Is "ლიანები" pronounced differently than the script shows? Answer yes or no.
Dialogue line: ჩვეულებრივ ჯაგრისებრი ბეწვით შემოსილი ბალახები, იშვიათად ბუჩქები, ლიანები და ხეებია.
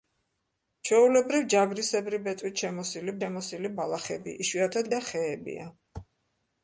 yes